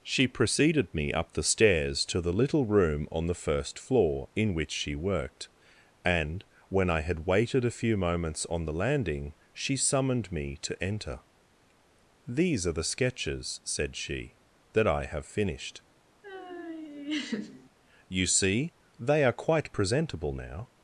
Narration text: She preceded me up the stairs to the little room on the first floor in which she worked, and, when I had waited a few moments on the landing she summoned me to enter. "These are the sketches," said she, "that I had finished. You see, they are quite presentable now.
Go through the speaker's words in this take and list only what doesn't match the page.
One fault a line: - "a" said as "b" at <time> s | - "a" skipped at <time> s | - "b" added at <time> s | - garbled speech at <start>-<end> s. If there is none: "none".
- "had" said as "have" at 15.1 s